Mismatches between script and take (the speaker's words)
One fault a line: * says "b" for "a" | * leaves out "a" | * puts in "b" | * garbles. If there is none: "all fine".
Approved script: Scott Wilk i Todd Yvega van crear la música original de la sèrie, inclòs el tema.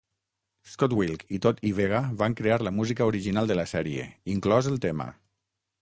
all fine